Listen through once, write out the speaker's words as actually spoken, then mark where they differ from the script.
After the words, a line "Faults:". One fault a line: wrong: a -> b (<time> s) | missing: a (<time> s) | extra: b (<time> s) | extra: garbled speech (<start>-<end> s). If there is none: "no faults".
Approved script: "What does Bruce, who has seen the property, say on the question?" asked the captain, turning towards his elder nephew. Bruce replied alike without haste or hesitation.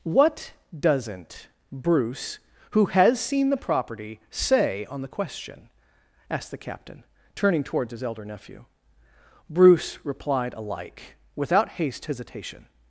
"What doesn't Bruce, who has seen the property, say on the question?" asked the captain, turning towards his elder nephew. Bruce replied alike without haste hesitation.
Faults:
wrong: does -> doesn't (0.8 s)
missing: or (12.1 s)